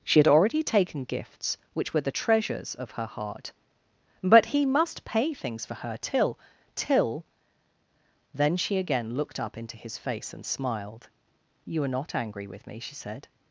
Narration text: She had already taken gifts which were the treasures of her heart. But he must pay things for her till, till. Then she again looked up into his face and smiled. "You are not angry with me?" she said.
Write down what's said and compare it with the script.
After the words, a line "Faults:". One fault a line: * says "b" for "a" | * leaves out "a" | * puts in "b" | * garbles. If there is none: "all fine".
She had already taken gifts which were the treasures of her heart. But he must pay things for her till, till. Then she again looked up into his face and smiled. "You are not angry with me?" she said.
Faults:
all fine